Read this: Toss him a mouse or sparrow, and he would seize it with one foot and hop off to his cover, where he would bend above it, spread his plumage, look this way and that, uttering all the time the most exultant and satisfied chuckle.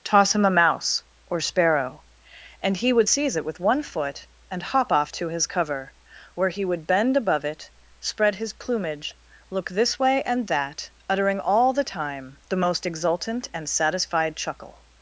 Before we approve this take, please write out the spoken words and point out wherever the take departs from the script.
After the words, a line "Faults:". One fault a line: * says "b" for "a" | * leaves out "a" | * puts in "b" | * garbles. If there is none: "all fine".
Toss him a mouse or sparrow, and he would seize it with one foot and hop off to his cover, where he would bend above it, spread his plumage, look this way and that, uttering all the time the most exultant and satisfied chuckle.
Faults:
all fine